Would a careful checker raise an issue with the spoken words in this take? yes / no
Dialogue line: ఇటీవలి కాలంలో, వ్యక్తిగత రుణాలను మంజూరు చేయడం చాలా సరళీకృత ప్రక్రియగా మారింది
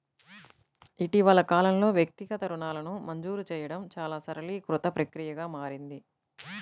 no